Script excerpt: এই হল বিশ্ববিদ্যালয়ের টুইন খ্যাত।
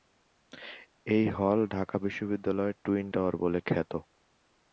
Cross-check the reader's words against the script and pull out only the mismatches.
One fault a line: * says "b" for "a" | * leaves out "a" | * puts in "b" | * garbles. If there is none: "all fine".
* puts in "ঢাকা"
* puts in "টাওয়ার বলে"